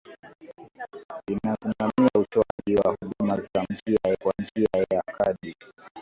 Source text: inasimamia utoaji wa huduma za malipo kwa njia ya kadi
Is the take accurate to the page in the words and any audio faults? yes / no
no